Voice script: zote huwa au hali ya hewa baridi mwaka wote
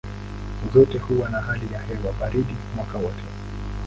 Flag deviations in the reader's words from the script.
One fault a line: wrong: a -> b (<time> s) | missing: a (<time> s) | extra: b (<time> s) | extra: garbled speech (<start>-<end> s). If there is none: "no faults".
wrong: au -> na (1.3 s)